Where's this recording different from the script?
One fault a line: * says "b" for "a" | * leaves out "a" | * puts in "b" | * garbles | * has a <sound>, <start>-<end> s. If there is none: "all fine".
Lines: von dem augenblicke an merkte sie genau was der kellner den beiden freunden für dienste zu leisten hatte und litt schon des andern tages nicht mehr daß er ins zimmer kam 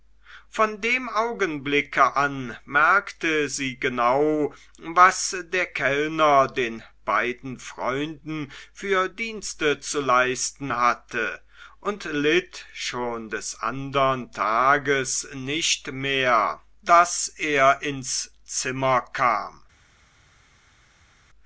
all fine